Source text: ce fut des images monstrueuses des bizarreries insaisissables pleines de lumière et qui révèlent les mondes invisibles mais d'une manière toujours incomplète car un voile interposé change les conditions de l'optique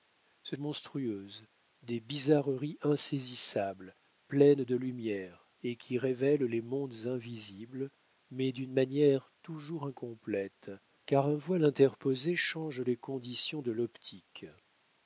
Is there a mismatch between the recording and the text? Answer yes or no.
yes